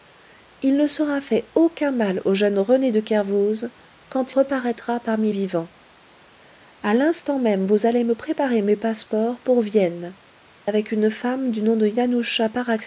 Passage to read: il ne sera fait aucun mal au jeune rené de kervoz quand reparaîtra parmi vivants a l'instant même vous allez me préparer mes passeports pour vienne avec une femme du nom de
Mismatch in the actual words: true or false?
false